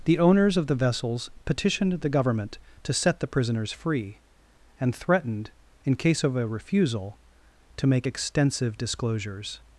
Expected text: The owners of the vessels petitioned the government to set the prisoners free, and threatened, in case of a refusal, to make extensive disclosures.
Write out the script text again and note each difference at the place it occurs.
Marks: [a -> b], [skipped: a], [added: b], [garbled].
The owners of the vessels petitioned the government to set the prisoners free, and threatened, in case of a refusal, to make extensive disclosures.